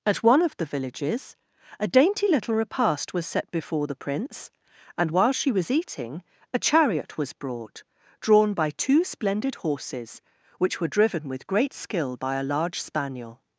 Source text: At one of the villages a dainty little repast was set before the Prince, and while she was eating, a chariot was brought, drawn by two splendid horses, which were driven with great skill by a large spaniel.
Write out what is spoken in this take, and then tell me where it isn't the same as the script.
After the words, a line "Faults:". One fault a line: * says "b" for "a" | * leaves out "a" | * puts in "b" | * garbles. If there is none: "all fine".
At one of the villages a dainty little repast was set before the Prince, and while she was eating, a chariot was brought, drawn by two splendid horses, which were driven with great skill by a large spaniel.
Faults:
all fine